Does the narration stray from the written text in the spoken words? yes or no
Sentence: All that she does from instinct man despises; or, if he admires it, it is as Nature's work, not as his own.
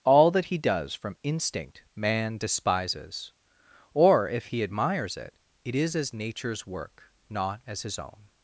yes